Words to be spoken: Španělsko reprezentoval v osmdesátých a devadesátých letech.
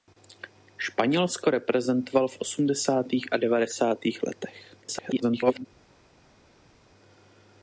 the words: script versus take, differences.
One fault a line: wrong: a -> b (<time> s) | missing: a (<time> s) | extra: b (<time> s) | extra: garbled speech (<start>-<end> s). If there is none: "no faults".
extra: garbled speech (4.8-5.7 s)